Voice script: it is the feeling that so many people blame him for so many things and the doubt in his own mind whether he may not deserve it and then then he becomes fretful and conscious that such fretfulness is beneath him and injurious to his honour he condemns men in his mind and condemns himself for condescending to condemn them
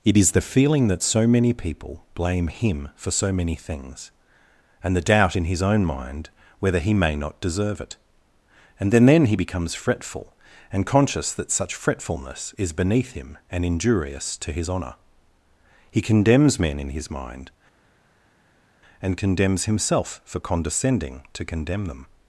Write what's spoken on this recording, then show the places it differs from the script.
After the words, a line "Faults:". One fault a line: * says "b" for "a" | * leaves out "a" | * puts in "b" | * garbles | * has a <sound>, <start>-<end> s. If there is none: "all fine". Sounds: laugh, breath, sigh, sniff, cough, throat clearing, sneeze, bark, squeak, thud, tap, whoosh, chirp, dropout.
it is the feeling that so many people blame him for so many things and the doubt in his own mind whether he may not deserve it and then then he becomes fretful and conscious that such fretfulness is beneath him and injurious to his honour he condemns men in his mind and condemns himself for condescending to condemn them
Faults:
all fine